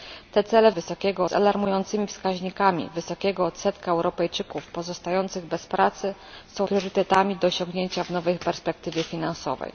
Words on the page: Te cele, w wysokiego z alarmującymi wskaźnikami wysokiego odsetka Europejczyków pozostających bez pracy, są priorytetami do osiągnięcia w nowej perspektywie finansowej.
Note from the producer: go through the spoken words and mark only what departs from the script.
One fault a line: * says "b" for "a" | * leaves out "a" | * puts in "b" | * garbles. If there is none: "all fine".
all fine